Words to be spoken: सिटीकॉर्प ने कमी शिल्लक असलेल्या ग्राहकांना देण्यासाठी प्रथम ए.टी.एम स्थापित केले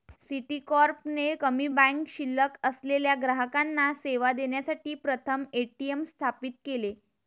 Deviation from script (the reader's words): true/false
true